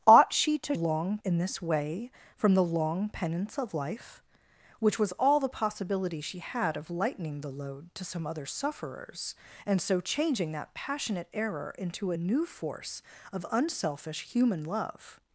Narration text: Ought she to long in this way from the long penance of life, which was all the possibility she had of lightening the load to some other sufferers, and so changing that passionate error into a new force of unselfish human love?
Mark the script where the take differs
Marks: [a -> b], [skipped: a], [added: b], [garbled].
Ought she to long in this way from the long penance of life, which was all the possibility she had of lightening the load to some other sufferers, and so changing that passionate error into a new force of unselfish human love?